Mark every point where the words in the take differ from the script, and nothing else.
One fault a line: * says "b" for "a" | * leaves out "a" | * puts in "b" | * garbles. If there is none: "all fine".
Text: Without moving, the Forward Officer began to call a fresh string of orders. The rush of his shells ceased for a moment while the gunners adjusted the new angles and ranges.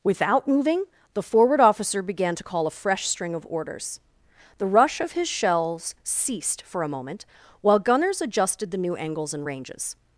* leaves out "the"